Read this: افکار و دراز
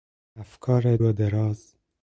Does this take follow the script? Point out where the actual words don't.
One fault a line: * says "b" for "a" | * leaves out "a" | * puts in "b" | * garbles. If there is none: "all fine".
all fine